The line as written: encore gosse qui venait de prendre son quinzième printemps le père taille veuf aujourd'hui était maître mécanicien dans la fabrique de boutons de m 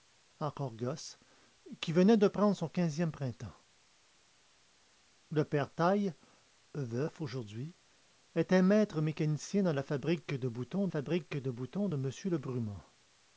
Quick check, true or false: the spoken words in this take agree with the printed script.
false